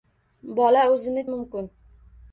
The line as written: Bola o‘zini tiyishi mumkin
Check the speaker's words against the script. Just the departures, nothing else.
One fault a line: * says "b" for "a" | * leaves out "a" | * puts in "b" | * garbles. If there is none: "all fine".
* leaves out "tiyishi"